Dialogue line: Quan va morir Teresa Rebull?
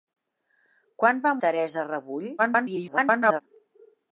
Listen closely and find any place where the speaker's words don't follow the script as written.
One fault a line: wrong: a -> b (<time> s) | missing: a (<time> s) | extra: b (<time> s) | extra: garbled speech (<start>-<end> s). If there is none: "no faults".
missing: morir (1.4 s)
extra: garbled speech (2.4-3.4 s)